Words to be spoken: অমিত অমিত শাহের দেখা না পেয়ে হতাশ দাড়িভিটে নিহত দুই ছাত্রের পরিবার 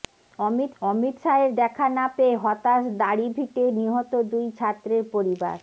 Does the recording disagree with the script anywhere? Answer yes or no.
no